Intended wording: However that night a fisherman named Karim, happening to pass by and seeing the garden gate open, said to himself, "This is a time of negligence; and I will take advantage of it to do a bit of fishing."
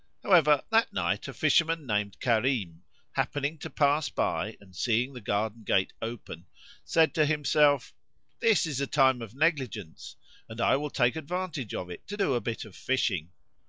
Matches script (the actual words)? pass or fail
pass